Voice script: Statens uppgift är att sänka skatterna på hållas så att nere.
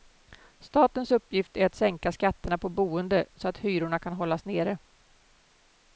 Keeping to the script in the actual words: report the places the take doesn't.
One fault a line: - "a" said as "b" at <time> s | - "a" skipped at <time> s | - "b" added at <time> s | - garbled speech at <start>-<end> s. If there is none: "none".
- "hållas" said as "boende" at 2.7 s
- "hyrorna kan hållas" added at 3.6 s